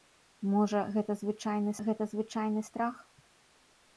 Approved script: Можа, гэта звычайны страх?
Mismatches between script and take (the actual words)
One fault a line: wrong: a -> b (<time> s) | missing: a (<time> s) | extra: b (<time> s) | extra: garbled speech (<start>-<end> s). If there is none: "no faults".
extra: гэта звычайны (1.9 s)